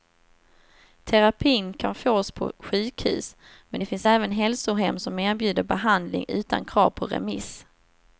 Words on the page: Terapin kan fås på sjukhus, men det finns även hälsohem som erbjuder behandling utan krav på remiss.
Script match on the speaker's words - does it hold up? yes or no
yes